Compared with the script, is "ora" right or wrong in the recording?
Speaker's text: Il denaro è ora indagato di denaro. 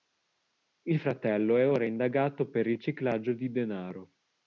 right